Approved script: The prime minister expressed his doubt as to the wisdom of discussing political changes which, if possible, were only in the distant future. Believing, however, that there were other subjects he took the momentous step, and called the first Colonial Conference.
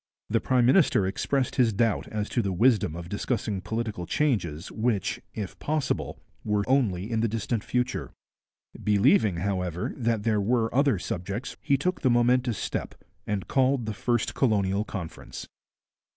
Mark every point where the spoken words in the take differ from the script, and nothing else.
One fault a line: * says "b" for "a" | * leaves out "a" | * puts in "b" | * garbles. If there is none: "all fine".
all fine